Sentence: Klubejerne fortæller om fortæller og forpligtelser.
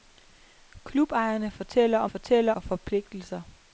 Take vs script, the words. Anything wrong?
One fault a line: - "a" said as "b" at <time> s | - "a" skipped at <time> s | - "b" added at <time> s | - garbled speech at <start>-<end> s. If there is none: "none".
none